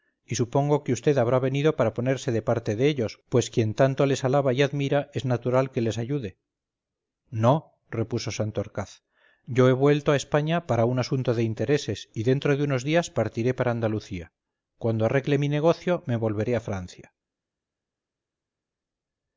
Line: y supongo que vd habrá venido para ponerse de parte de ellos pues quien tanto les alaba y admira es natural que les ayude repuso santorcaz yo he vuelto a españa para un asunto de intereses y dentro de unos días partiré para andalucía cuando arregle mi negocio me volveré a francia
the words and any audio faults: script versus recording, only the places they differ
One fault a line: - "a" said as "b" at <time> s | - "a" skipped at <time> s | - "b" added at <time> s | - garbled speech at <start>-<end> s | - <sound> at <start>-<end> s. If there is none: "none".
- "no" added at 7.3 s